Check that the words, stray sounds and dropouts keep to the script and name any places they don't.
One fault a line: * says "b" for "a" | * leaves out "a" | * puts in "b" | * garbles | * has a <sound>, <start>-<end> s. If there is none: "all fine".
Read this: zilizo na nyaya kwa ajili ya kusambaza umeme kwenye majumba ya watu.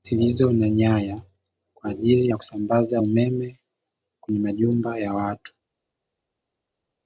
all fine